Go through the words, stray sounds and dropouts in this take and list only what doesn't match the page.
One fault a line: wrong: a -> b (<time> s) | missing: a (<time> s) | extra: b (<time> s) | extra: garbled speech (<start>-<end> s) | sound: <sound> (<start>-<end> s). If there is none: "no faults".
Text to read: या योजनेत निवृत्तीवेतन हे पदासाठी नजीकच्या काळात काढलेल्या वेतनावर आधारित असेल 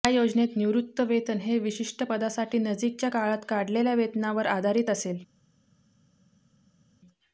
extra: विशिष्ट (1.6 s)